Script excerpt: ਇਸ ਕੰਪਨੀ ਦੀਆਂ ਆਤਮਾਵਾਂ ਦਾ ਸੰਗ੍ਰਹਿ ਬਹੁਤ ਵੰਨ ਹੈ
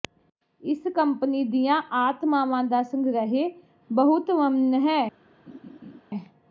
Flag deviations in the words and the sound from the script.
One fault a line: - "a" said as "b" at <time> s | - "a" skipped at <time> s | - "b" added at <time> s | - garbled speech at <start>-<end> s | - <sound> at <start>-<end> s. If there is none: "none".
- laugh at 5.5-6.0 s